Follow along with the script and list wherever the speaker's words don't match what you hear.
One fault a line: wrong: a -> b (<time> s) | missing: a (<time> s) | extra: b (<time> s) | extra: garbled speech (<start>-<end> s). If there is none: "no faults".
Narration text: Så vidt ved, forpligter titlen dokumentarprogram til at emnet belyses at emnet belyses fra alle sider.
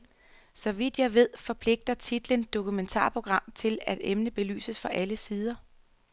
extra: jeg (1.0 s)
missing: at emnet belyses (4.8 s)